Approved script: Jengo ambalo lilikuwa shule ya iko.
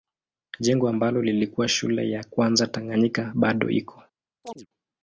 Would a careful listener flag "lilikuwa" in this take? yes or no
no